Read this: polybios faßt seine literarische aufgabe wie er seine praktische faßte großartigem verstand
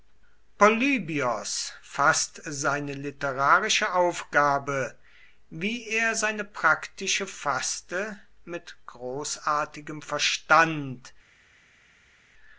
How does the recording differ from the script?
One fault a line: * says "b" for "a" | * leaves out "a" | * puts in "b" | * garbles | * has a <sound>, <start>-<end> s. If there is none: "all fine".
* puts in "mit"